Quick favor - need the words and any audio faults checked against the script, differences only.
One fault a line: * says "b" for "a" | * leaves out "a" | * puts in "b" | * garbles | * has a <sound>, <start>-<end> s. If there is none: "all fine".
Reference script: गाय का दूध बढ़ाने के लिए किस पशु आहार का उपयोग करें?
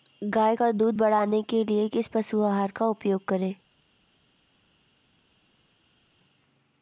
all fine